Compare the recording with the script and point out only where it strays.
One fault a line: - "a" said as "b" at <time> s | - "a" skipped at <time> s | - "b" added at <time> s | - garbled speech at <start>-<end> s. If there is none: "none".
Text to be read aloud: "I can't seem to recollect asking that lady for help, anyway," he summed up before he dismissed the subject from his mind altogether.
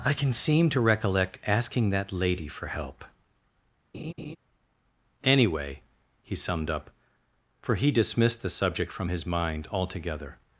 - "can't" said as "can" at 0.1 s
- "before" said as "for" at 7.7 s